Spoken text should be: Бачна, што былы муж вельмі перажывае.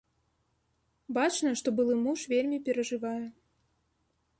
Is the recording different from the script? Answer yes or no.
no